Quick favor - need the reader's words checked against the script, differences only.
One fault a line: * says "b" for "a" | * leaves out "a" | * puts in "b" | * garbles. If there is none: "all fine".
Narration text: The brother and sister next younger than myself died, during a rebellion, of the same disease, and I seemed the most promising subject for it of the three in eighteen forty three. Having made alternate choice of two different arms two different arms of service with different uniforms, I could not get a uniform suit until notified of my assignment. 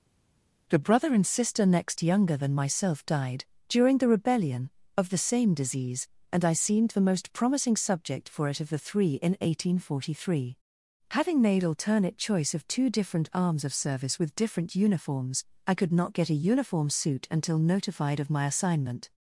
* says "the" for "a"
* leaves out "two different arms"